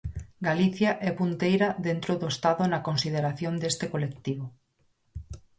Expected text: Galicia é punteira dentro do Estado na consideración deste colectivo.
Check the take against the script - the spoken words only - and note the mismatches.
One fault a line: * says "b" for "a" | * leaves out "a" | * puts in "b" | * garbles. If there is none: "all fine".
all fine